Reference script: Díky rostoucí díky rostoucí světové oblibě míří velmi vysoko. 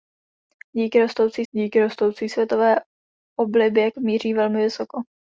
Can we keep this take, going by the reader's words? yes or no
yes